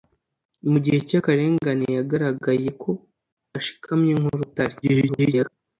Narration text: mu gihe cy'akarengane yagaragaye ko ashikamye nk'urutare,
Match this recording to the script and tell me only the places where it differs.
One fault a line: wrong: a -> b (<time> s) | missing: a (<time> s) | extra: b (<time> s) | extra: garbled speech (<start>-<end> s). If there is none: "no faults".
extra: garbled speech (4.8-5.5 s)